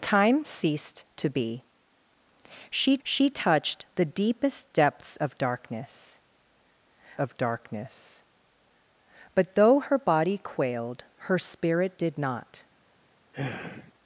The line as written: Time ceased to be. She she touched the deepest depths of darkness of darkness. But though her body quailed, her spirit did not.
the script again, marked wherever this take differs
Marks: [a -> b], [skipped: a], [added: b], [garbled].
Time ceased to be. She she touched the deepest depths of darkness of darkness. But though her body quailed, her spirit did not.